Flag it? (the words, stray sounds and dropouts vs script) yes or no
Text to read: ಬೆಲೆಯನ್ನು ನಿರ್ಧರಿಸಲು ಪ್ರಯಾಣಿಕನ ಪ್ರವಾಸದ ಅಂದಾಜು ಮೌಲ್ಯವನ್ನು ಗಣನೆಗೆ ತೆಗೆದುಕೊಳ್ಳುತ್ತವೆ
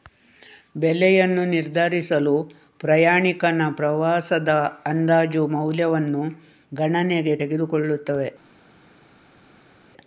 no